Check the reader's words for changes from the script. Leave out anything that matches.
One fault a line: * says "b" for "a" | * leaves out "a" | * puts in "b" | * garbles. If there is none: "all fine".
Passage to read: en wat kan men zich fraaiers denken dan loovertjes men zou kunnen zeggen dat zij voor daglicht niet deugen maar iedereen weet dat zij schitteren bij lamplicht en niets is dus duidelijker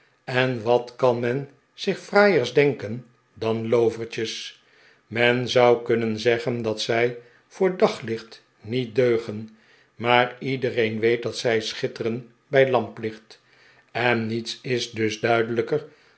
all fine